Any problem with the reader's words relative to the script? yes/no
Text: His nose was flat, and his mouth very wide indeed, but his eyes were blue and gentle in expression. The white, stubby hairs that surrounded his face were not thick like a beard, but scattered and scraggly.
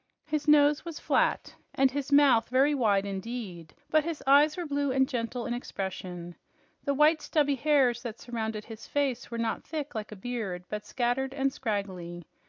no